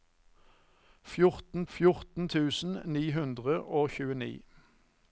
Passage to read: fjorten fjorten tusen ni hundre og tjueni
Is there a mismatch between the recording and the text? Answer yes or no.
no